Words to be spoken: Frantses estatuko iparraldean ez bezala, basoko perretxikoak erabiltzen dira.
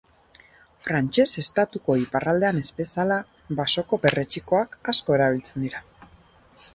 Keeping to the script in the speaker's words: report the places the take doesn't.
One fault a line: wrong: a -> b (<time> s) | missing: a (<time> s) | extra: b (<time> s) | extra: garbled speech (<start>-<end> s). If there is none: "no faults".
extra: asko (4.9 s)